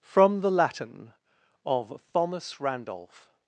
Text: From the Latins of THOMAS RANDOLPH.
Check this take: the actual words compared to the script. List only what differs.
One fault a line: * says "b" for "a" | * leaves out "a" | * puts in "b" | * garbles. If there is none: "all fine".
* says "Latin" for "Latins"